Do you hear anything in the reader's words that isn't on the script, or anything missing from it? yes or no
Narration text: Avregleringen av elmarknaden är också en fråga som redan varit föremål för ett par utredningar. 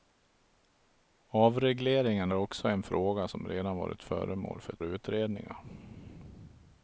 yes